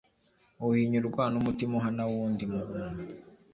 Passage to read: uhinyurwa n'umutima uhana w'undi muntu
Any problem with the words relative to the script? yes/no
no